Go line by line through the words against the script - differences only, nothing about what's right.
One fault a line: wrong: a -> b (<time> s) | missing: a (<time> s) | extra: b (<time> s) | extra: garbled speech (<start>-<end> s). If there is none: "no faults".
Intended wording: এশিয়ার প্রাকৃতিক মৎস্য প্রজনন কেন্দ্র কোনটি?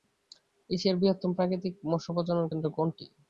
extra: বৃহত্তম (1.0 s)